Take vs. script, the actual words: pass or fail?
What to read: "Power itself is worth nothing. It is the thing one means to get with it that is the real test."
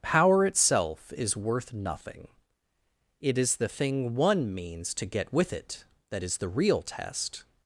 pass